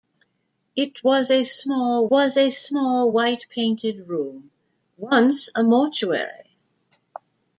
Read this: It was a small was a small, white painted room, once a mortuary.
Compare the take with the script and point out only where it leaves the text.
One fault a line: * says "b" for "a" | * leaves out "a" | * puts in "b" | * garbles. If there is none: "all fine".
all fine